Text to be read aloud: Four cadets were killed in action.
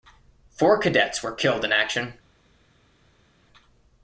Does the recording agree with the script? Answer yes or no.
yes